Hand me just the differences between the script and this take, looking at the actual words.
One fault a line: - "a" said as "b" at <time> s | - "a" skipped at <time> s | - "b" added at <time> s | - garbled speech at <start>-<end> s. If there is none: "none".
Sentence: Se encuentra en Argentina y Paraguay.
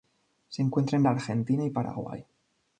none